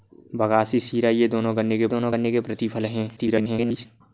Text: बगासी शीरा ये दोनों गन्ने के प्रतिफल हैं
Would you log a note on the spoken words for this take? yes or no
yes